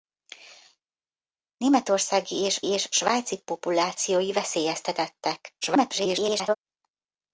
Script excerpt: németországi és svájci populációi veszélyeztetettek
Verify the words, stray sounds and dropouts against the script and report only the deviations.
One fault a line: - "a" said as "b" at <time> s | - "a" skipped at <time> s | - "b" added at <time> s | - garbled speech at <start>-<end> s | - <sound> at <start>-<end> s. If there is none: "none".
- "és" added at 2.6 s
- garbled speech at 5.6-6.6 s